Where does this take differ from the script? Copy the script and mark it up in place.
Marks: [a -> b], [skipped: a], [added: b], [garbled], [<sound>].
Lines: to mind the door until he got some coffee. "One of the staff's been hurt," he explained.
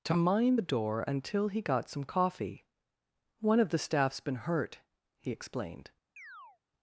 to mind the door until he got some coffee. "One of the staff's been hurt," he explained. [chirp]